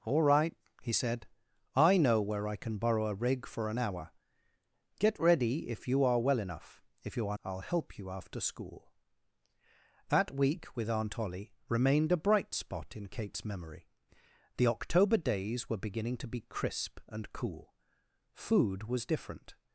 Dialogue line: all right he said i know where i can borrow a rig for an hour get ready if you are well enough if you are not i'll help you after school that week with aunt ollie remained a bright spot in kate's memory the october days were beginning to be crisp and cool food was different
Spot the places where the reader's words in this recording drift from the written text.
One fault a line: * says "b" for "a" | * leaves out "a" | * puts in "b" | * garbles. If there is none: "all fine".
* leaves out "not"